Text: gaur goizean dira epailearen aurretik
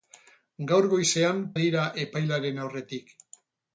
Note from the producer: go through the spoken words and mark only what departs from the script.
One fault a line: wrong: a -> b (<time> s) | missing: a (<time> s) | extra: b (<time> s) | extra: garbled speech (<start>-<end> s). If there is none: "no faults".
no faults